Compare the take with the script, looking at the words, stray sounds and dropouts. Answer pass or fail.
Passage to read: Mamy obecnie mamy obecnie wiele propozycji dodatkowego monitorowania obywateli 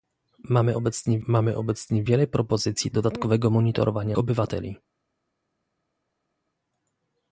pass